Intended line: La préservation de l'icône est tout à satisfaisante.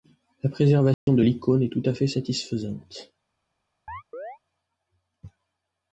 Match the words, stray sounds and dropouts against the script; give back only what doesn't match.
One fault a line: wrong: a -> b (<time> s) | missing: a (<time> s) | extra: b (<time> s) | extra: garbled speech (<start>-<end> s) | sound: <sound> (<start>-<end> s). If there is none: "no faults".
sound: dropout (0.9-1.1 s)
extra: fait (1.9 s)
sound: chirp (3.9-4.4 s)